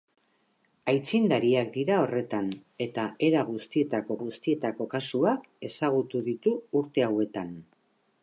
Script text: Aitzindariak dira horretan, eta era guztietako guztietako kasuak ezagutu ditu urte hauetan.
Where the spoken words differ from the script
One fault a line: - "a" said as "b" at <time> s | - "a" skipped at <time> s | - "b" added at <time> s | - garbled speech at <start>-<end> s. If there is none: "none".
none